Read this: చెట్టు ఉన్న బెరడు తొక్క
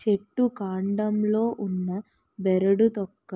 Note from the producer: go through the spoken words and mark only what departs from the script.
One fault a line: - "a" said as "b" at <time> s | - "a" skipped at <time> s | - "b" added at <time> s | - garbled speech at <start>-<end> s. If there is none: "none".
- "కాండంలో" added at 0.6 s